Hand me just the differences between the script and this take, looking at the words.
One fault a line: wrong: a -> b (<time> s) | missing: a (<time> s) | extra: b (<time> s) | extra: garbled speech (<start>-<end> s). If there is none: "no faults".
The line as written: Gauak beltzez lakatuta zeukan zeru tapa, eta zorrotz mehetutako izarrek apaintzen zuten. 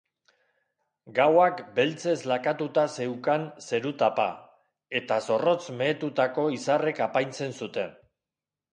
no faults